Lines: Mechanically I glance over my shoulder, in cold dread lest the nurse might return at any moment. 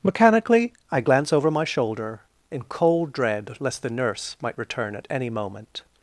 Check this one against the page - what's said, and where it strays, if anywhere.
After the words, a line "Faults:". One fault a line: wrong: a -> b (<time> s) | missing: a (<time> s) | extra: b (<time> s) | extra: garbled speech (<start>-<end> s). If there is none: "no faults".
Mechanically I glance over my shoulder, in cold dread lest the nurse might return at any moment.
Faults:
no faults